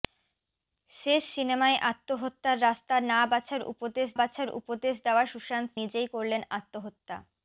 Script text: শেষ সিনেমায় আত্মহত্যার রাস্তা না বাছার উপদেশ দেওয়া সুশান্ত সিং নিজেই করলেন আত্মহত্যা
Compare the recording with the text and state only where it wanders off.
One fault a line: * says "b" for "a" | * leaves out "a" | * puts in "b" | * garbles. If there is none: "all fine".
* puts in "বাছার উপদেশ"
* leaves out "সিং"